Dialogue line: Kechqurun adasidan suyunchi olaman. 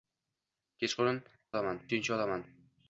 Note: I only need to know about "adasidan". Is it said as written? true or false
false